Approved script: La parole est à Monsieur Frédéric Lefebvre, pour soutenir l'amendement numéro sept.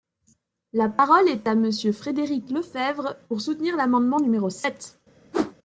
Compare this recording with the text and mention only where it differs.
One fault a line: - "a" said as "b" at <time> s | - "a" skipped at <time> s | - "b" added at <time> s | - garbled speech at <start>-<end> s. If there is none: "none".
none